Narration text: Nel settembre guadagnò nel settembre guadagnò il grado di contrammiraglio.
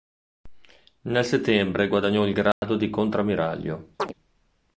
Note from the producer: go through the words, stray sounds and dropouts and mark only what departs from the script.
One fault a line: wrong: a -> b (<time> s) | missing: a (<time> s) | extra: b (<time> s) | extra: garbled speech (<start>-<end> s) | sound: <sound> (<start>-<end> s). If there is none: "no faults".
missing: nel settembre guadagnò (2.2 s)
sound: dropout (2.5-2.6 s)
sound: chirp (4.0-4.1 s)